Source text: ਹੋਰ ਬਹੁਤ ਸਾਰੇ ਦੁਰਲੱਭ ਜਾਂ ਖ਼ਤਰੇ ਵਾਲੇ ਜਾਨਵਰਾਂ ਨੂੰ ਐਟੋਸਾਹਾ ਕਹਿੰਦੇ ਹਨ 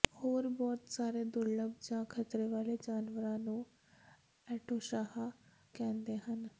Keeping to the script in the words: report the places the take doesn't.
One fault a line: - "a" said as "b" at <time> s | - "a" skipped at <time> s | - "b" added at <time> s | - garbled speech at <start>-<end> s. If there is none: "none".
none